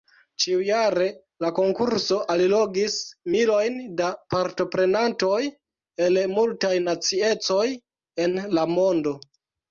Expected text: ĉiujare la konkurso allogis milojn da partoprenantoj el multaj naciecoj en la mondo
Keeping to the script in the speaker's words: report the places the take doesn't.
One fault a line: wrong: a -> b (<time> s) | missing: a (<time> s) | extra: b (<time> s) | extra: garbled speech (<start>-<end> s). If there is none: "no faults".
no faults